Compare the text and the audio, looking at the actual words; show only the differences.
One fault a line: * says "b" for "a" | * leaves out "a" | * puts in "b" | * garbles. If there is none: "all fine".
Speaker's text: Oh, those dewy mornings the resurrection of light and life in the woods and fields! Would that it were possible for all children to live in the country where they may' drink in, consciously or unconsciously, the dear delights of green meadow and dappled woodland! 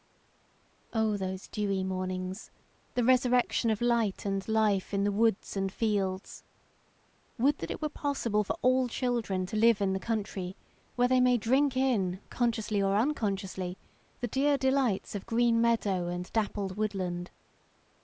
all fine